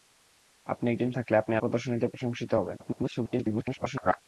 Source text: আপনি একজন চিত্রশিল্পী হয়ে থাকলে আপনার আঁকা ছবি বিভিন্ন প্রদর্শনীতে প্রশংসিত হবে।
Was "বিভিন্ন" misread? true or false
true